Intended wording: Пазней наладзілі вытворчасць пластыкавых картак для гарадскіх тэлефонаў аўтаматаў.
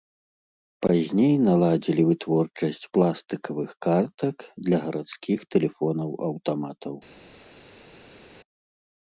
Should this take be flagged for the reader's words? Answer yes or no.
no